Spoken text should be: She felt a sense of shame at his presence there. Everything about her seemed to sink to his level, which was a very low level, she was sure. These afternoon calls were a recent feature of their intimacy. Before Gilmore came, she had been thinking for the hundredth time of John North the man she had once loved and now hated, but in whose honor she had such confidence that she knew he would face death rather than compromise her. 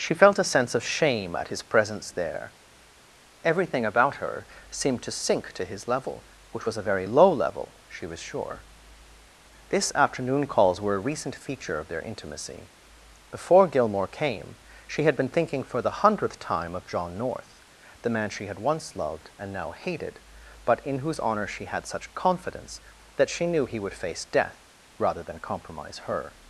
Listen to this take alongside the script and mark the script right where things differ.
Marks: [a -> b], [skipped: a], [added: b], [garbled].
She felt a sense of shame at his presence there. Everything about her seemed to sink to his level, which was a very low level, she was sure. [These -> This] afternoon calls were a recent feature of their intimacy. Before Gilmore came, she had been thinking for the hundredth time of John North the man she had once loved and now hated, but in whose honor she had such confidence that she knew he would face death rather than compromise her.